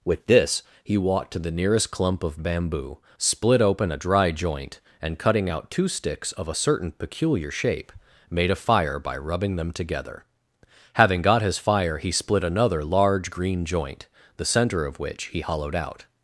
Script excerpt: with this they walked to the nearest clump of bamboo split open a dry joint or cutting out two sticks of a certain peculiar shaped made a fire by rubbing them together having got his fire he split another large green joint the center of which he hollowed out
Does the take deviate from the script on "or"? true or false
true